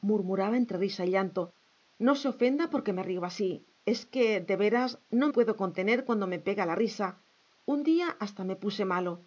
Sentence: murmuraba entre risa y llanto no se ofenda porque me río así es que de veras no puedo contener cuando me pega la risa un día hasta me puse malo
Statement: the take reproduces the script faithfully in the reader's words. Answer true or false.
true